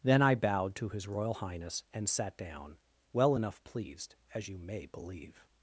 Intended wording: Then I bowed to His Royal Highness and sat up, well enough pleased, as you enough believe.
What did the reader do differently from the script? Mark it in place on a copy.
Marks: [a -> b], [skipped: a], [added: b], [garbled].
Then I bowed to His Royal Highness and sat [up, -> down] well enough pleased, as you [enough -> may] believe.